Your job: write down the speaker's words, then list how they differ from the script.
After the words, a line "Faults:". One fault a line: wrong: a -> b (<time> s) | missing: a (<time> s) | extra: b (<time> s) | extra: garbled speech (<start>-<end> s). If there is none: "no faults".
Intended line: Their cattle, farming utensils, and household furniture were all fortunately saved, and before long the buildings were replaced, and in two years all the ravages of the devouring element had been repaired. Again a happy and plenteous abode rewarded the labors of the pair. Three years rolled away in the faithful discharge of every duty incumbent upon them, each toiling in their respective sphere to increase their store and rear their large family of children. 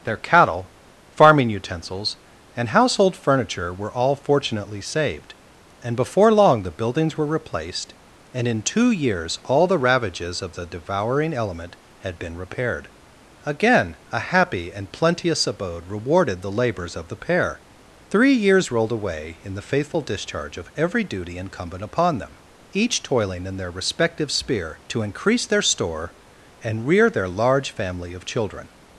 Their cattle, farming utensils, and household furniture were all fortunately saved, and before long the buildings were replaced, and in two years all the ravages of the devouring element had been repaired. Again a happy and plenteous abode rewarded the labors of the pair. Three years rolled away in the faithful discharge of every duty incumbent upon them, each toiling in their respective sphere to increase their store and rear their large family of children.
Faults:
no faults